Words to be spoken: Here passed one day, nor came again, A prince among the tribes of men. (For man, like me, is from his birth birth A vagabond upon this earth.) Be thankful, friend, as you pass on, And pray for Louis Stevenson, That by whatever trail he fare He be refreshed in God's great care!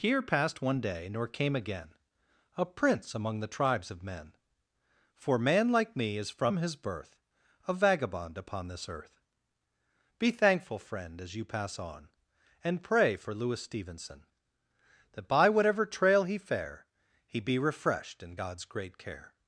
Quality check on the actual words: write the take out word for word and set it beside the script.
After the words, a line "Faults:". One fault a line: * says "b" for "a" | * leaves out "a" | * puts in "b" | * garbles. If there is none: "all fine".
Here passed one day, nor came again, A prince among the tribes of men. (For man, like me, is from his birth A vagabond upon this earth.) Be thankful, friend, as you pass on, And pray for Louis Stevenson, That by whatever trail he fare He be refreshed in God's great care!
Faults:
* leaves out "birth"